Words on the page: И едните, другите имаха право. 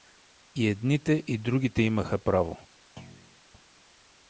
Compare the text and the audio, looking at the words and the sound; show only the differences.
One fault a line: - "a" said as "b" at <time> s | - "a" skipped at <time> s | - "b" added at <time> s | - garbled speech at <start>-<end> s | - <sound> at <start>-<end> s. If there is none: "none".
- "и" added at 1.3 s
- thud at 3.0-3.4 s